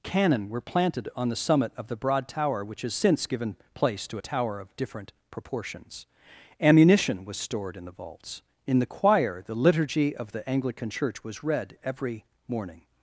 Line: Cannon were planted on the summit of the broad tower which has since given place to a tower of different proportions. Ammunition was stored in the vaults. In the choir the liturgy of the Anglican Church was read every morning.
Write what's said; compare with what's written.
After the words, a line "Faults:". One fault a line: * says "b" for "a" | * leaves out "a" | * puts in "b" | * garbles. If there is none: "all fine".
Cannon were planted on the summit of the broad tower which has since given place to a tower of different proportions. Ammunition was stored in the vaults. In the choir the liturgy of the Anglican Church was read every morning.
Faults:
all fine